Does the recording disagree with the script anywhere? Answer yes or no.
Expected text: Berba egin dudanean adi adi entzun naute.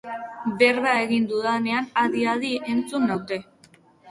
no